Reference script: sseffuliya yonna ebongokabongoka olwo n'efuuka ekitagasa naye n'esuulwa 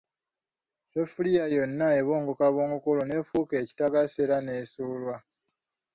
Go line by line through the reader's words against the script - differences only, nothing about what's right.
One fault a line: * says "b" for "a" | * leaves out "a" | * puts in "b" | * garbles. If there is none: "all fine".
* says "era" for "naye"